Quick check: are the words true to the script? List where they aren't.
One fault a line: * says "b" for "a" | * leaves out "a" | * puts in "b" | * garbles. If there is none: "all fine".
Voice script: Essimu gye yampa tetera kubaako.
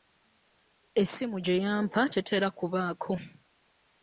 all fine